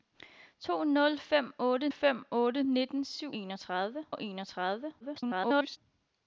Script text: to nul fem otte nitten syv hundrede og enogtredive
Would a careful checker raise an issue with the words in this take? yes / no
yes